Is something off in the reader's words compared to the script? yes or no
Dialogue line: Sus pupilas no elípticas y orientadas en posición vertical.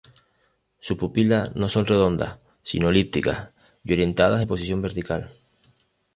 yes